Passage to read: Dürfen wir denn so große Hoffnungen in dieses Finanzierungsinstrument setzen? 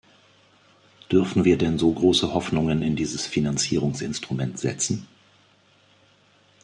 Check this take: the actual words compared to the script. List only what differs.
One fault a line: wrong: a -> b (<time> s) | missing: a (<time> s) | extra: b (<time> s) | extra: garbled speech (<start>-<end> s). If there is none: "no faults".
no faults